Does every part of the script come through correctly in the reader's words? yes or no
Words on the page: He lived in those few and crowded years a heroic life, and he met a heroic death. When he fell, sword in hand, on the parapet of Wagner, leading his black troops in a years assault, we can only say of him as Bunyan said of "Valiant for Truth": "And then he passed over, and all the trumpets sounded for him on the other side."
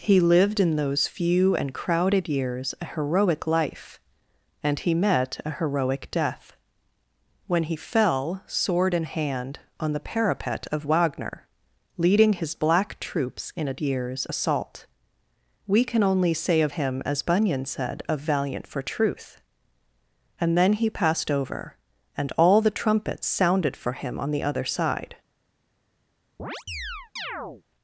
yes